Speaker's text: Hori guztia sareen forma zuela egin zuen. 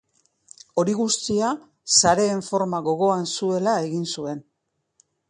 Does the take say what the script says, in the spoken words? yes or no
no